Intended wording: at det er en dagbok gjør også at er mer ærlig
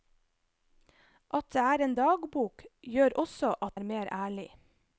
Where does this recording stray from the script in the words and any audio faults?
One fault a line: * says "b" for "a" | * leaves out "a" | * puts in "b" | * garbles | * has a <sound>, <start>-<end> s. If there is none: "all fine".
all fine